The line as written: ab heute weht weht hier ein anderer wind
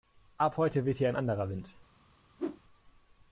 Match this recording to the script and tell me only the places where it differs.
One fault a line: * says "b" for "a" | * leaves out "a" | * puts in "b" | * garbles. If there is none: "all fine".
* leaves out "weht"